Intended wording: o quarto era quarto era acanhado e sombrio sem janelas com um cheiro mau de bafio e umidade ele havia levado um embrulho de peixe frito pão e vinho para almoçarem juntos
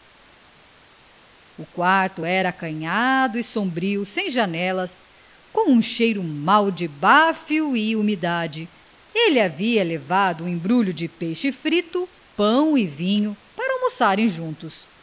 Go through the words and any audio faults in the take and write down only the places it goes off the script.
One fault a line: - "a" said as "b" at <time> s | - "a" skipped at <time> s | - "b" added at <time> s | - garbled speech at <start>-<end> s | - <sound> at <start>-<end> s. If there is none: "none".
- "quarto era" skipped at 2.5 s